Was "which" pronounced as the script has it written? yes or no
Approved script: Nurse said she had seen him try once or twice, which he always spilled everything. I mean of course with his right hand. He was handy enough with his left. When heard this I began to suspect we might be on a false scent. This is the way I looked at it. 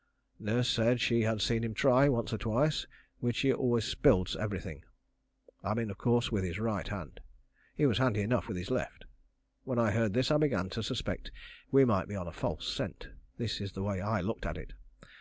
yes